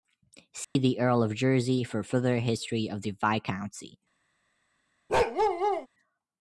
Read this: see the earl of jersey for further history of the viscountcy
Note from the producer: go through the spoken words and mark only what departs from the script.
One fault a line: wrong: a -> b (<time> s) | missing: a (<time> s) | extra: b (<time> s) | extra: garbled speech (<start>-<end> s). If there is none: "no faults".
no faults